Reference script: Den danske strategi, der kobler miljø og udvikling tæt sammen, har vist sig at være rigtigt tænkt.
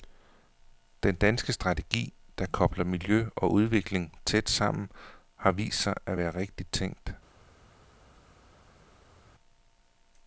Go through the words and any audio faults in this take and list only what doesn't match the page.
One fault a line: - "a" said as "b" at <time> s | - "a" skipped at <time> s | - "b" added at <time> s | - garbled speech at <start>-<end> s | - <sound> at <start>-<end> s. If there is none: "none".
none